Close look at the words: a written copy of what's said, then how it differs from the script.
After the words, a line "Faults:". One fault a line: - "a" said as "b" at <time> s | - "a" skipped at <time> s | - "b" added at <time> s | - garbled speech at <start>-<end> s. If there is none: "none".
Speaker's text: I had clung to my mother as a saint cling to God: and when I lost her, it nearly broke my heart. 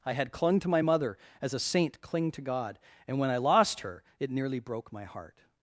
I had clung to my mother as a saint cling to God: and when I lost her, it nearly broke my heart.
Faults:
none